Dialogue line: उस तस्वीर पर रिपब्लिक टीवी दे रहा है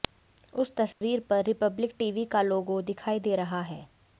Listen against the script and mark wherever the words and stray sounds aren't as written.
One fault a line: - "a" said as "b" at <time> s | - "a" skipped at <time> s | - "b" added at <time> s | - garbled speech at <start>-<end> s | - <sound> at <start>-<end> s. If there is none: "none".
- dropout at 0.9-1.0 s
- "का लोगो दिखाई" added at 2.3 s